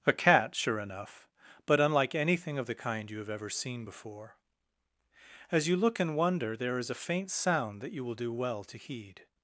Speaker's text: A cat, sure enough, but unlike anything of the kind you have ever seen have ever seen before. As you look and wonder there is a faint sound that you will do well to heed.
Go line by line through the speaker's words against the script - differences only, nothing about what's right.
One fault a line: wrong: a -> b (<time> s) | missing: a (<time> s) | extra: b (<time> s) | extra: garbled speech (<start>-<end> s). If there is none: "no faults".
missing: have ever seen (3.9 s)